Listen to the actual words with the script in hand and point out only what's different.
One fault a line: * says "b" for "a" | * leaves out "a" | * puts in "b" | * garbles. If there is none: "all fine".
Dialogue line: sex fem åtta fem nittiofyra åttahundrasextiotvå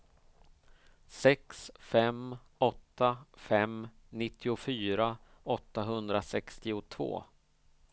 all fine